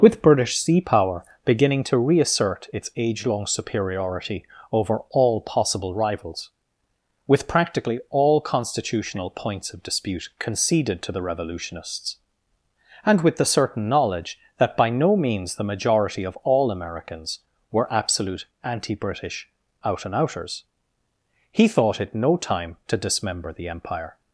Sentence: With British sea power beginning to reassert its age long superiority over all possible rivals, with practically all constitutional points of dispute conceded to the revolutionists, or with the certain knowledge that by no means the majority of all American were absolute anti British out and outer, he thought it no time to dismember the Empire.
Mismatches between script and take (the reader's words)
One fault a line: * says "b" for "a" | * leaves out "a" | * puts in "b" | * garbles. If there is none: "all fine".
* says "and" for "or"
* says "Americans" for "American"
* says "outers" for "outer"